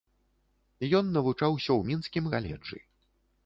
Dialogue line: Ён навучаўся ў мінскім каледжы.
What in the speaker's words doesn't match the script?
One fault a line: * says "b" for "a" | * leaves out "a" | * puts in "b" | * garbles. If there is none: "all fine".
all fine